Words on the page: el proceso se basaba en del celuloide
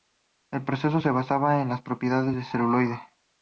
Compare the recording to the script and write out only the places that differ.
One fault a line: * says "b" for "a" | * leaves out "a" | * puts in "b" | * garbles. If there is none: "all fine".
* puts in "las propiedades"